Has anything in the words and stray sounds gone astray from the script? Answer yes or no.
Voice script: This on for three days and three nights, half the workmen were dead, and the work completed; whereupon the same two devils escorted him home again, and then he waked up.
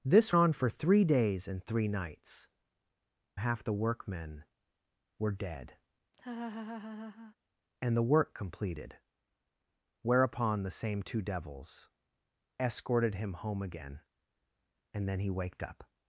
yes